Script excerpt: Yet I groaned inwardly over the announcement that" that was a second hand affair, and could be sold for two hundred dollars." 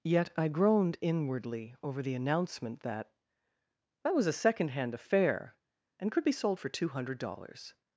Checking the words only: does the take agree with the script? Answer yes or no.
yes